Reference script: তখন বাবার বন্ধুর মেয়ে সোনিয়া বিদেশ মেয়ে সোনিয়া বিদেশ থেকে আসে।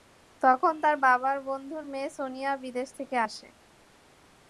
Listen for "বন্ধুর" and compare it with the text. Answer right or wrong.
right